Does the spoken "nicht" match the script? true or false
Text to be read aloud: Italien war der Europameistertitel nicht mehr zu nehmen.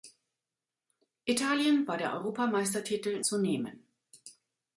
false